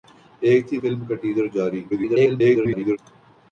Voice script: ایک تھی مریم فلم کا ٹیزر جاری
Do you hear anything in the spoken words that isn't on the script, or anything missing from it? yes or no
yes